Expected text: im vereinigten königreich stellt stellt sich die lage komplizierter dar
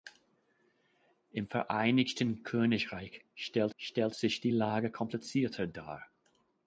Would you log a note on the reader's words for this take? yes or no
no